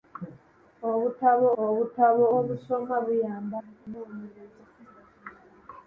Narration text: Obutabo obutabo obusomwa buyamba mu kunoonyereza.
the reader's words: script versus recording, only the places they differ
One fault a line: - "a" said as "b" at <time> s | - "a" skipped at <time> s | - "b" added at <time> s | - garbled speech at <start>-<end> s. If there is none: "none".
none